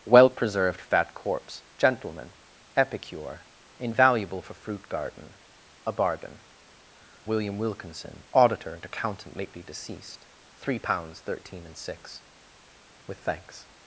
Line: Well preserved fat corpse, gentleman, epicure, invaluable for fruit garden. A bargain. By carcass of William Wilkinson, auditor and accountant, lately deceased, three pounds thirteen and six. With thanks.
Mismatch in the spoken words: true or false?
true